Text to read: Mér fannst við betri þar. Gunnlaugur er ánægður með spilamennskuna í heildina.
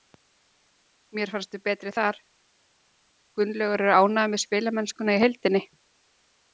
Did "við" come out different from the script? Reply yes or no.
no